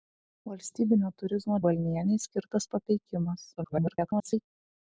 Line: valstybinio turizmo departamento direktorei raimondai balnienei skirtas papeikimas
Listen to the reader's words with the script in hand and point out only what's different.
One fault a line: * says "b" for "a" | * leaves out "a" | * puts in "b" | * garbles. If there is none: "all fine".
* leaves out "departamento direktorei raimondai"
* garbles